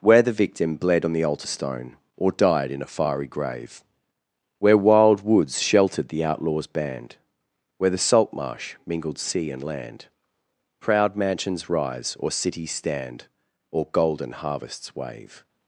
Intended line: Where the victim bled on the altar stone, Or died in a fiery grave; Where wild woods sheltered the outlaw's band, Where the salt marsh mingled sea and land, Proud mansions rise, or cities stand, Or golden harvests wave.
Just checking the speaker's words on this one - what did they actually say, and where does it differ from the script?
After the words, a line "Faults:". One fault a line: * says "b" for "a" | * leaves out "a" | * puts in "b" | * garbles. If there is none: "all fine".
Where the victim bled on the altar stone, Or died in a fiery grave; Where wild woods sheltered the outlaw's band, Where the salt marsh mingled sea and land, Proud mansions rise, or cities stand, Or golden harvests wave.
Faults:
all fine